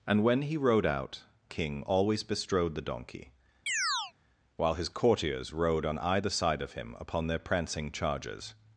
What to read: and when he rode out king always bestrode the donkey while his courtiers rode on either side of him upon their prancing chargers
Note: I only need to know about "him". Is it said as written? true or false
true